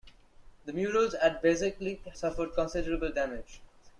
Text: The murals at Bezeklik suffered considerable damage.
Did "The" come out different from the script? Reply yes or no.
no